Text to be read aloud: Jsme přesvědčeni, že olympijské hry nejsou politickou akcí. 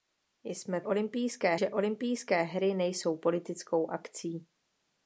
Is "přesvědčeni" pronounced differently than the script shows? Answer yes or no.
yes